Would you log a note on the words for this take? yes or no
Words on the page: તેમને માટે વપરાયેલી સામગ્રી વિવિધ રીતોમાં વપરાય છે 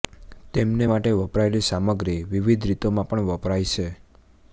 yes